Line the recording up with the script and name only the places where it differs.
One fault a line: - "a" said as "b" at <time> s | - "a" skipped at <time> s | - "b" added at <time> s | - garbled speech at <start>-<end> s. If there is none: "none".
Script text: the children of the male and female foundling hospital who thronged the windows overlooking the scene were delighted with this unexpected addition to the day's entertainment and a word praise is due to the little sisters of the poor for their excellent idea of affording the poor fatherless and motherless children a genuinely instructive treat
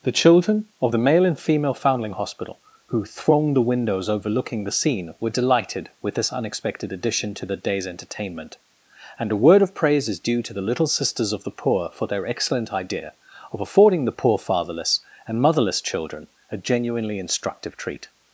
- "of" added at 9.6 s